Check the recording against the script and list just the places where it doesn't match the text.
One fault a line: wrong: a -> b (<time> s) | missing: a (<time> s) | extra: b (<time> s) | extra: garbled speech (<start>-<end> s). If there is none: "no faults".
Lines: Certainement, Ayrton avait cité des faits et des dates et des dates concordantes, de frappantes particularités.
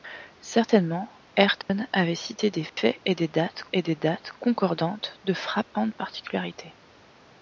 no faults